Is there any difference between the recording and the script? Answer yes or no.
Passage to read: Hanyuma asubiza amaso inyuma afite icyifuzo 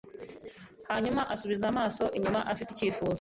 no